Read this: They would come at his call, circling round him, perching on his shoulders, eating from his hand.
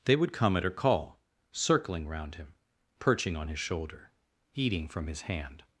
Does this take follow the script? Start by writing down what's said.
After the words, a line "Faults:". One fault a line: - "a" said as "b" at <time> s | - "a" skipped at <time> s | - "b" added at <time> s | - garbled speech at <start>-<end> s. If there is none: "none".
They would come at her call, circling round him, perching on his shoulder, eating from his hand.
Faults:
- "his" said as "her" at 0.6 s
- "shoulders" said as "shoulder" at 3.6 s